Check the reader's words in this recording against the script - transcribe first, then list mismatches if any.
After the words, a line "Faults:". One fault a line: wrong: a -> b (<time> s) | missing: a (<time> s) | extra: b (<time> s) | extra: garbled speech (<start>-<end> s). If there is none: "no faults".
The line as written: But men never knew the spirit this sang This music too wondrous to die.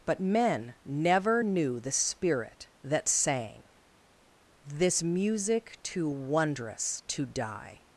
But men never knew the spirit that sang This music too wondrous to die.
Faults:
wrong: this -> that (2.8 s)